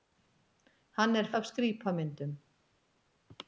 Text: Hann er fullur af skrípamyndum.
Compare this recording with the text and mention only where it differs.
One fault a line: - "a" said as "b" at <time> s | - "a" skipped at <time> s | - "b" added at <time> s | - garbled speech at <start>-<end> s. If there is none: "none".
- "fullur" skipped at 1.3 s